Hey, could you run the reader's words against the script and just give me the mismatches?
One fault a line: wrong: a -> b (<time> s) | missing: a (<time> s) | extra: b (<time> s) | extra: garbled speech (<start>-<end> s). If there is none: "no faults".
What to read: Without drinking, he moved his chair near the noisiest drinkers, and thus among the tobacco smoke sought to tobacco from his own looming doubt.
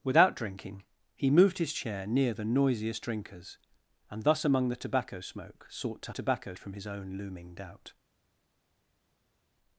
no faults